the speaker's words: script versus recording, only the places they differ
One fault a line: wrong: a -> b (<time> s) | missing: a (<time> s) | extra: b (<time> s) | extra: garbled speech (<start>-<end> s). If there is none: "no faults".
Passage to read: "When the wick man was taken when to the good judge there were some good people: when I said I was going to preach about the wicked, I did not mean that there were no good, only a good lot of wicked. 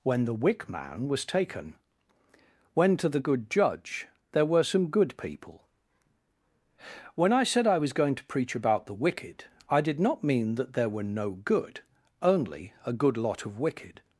no faults